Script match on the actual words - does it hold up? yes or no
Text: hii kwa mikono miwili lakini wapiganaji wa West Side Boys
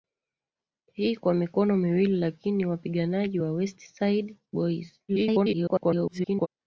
no